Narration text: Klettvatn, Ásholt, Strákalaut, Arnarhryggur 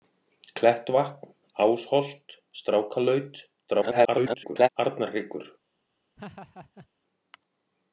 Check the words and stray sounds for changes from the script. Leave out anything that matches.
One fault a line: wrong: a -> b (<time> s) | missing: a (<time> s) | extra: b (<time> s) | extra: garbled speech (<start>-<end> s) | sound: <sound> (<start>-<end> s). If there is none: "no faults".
extra: garbled speech (3.7-4.7 s)
sound: laugh (6.2-6.9 s)